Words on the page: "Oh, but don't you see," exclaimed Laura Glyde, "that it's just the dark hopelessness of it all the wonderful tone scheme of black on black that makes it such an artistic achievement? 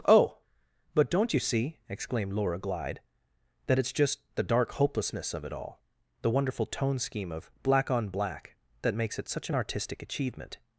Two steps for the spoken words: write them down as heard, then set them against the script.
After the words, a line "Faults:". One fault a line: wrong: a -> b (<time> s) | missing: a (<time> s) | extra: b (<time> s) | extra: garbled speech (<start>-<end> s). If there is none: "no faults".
"Oh, but don't you see," exclaimed Laura Glyde, "that it's just the dark hopelessness of it all the wonderful tone scheme of black on black that makes it such an artistic achievement?
Faults:
no faults